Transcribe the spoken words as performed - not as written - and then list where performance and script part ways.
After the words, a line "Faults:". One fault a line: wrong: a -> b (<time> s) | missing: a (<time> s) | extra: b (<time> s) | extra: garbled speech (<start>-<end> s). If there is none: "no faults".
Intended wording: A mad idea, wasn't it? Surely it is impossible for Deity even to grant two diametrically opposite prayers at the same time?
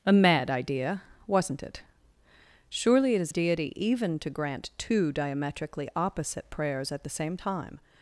A mad idea, wasn't it? Surely it is Deity even to grant two diametrically opposite prayers at the same time?
Faults:
missing: impossible for (3.3 s)